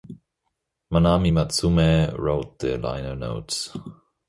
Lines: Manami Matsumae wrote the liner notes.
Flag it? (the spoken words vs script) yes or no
no